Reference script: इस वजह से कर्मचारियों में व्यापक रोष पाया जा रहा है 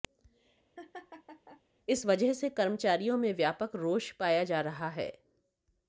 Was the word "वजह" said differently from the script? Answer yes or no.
no